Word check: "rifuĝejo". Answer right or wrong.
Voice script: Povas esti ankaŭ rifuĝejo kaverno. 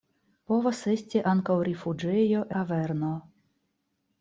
right